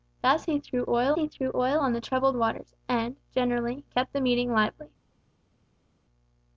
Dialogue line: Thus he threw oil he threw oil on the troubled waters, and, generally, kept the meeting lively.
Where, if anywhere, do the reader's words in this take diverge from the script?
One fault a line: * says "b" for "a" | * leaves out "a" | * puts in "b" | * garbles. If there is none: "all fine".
all fine